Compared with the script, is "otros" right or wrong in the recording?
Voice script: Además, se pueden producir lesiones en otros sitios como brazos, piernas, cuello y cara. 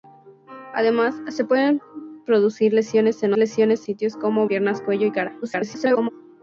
wrong